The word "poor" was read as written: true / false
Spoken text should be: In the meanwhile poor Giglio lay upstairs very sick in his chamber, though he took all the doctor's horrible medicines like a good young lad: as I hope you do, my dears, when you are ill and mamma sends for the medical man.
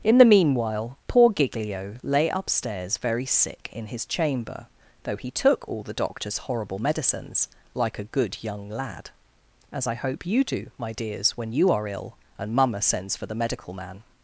true